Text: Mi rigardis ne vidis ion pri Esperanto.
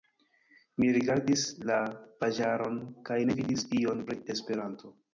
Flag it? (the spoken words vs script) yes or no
yes